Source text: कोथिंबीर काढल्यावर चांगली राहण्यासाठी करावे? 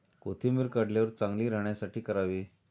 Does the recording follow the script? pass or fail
pass